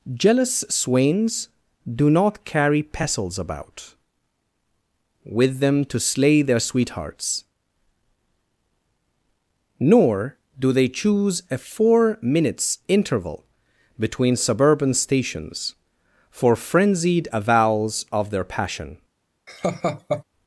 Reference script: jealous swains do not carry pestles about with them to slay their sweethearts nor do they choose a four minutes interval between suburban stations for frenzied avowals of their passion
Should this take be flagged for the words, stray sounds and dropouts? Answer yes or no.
yes